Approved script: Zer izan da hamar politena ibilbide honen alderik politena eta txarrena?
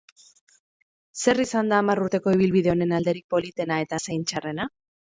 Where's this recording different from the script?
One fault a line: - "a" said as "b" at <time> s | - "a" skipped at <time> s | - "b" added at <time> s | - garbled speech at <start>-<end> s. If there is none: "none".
- "politena" said as "urteko" at 2.1 s
- "zein" added at 4.1 s